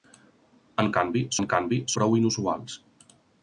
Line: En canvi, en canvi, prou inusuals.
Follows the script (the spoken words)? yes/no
yes